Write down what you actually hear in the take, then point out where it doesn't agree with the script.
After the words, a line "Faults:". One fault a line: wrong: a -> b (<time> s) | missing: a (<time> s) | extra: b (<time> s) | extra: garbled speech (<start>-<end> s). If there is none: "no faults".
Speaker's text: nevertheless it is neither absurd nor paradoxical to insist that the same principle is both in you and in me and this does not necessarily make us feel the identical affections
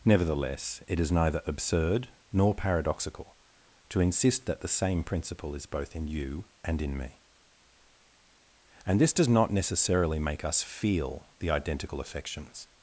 nevertheless it is neither absurd nor paradoxical to insist that the same principle is both in you and in me and this does not necessarily make us feel the identical affections
Faults:
no faults